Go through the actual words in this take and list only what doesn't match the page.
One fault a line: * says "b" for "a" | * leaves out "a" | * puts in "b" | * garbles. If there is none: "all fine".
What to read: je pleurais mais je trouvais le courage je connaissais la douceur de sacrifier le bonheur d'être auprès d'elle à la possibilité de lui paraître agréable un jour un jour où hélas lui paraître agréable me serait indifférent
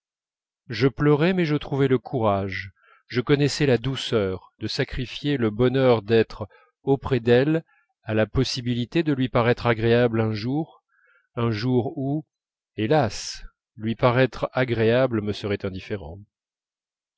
all fine